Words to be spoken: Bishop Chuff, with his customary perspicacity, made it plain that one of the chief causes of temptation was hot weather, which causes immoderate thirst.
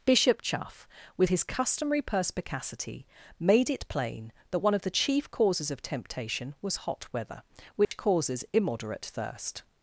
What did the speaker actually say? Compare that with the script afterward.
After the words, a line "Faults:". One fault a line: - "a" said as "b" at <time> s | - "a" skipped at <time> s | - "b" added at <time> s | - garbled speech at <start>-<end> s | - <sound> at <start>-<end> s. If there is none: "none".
Bishop Chuff, with his customary perspicacity, made it plain that one of the chief causes of temptation was hot weather, which causes immoderate thirst.
Faults:
- dropout at 7.8-7.9 s